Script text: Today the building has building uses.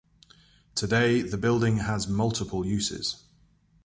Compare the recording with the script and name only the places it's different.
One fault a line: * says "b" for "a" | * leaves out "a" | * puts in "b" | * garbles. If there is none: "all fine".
* says "multiple" for "building"